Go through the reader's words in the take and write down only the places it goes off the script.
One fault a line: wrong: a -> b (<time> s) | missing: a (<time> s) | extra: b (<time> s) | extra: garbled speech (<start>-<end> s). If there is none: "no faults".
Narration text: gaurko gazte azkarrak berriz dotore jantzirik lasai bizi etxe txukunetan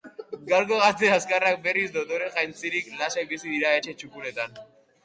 extra: dira (3.6 s)